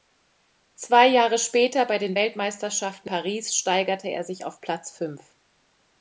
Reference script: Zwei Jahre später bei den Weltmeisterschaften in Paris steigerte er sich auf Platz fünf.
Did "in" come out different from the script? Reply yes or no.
yes